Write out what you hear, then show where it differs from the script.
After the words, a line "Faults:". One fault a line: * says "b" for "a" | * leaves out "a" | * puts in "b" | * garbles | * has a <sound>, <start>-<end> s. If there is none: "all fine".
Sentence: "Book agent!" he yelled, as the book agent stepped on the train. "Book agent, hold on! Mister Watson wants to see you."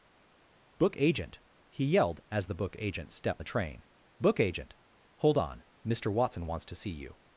"Book agent!" he yelled, as the book agent stepped the train. "Book agent, hold on! Mister Watson wants to see you."
Faults:
* leaves out "on"